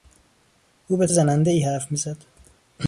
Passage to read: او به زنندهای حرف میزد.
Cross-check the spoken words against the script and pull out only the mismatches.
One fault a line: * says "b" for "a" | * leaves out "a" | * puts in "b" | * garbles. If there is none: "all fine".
all fine